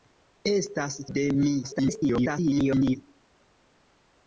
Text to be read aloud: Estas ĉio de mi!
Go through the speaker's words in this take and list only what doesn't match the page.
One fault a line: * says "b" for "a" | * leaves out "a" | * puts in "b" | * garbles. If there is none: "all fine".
* leaves out "ĉio"
* garbles